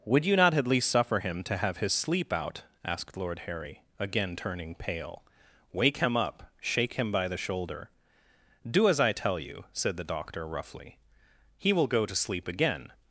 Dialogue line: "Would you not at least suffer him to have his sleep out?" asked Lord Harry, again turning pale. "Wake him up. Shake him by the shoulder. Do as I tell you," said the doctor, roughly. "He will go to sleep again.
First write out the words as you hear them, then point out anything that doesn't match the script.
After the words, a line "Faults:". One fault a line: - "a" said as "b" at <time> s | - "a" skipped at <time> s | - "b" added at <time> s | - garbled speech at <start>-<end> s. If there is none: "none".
"Would you not at least suffer him to have his sleep out?" asked Lord Harry, again turning pale. "Wake him up. Shake him by the shoulder. Do as I tell you," said the doctor, roughly. "He will go to sleep again.
Faults:
none